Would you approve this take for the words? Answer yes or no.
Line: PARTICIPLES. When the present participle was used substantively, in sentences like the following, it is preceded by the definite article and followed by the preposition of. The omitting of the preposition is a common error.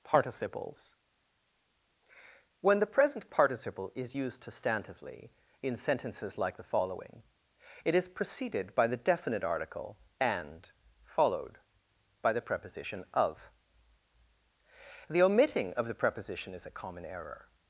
no